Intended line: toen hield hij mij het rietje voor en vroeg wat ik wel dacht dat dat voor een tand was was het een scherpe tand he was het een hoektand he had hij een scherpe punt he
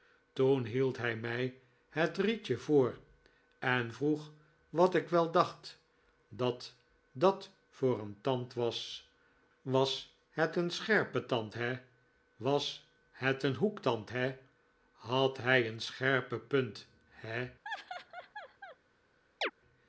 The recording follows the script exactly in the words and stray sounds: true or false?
false